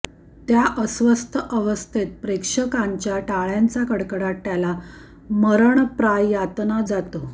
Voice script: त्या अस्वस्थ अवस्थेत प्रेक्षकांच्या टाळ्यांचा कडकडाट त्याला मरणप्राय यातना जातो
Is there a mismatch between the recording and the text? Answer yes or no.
no